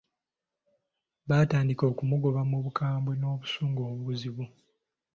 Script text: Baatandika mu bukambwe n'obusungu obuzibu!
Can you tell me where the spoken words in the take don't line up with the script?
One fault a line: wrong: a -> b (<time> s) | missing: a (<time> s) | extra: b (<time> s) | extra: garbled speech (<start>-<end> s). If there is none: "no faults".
extra: okumugoba (1.9 s)